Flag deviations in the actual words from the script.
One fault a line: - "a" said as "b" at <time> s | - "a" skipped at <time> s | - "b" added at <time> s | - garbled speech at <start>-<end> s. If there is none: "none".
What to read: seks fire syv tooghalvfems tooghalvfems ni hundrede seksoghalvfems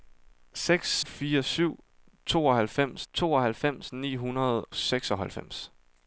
none